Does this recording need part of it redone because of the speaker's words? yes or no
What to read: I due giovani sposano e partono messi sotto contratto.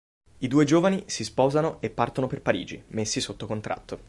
yes